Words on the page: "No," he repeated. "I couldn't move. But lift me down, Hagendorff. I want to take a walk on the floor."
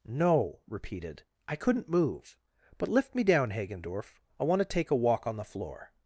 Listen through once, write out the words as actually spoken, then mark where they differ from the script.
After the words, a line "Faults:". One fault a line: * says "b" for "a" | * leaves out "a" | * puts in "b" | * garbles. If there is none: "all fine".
"No," repeated. "I couldn't move. But lift me down, Hagendorff. I want to take a walk on the floor."
Faults:
* leaves out "he"